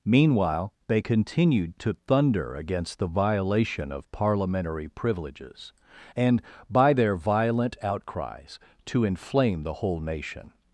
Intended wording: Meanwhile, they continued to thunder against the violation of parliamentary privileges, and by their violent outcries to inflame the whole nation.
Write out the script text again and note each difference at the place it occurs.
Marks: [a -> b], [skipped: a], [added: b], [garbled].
Meanwhile, they continued to thunder against the violation of parliamentary privileges, and by their violent outcries to inflame the whole nation.